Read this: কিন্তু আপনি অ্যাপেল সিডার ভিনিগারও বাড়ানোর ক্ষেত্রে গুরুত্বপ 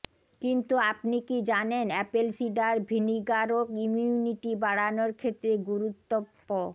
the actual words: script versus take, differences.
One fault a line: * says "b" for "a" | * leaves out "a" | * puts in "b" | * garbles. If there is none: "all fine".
* puts in "কি জানেন"
* puts in "ইমিউনিটি"